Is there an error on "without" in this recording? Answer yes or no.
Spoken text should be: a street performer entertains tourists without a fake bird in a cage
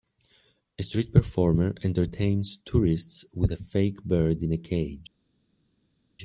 yes